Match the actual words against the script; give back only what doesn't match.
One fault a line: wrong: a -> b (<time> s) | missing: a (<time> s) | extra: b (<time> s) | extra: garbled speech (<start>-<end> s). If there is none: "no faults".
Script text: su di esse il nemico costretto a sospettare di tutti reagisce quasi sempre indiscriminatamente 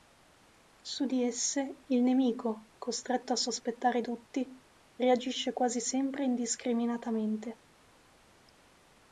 missing: di (4.0 s)